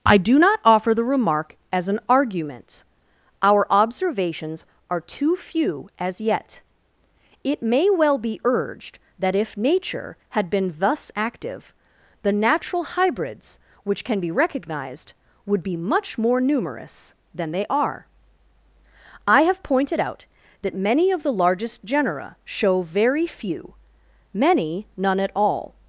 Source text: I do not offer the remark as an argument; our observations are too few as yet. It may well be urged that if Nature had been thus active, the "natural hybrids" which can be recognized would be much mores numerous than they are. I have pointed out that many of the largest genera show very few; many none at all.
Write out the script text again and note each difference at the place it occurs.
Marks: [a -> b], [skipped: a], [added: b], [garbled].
I do not offer the remark as an argument; our observations are too few as yet. It may well be urged that if Nature had been thus active, the "natural hybrids" which can be recognized would be much [mores -> more] numerous than they are. I have pointed out that many of the largest genera show very few; many none at all.